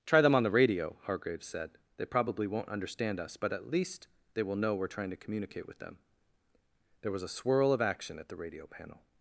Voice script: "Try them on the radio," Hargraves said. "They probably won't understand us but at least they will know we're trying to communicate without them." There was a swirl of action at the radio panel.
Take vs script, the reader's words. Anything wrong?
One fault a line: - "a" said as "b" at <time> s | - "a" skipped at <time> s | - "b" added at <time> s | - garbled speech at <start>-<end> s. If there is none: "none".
- "without" said as "with" at 5.7 s